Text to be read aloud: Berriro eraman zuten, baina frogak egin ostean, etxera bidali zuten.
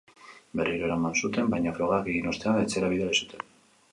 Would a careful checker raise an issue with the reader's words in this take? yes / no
no